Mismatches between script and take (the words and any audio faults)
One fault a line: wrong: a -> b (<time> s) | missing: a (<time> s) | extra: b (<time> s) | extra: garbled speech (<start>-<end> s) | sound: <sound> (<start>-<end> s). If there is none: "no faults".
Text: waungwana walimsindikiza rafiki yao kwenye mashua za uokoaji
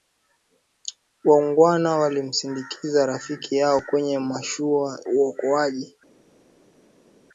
missing: za (5.0 s)